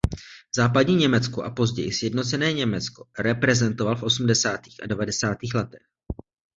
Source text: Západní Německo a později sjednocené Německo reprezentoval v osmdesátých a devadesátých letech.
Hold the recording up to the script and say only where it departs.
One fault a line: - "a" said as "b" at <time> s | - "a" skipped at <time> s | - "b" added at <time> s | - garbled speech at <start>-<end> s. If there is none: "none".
none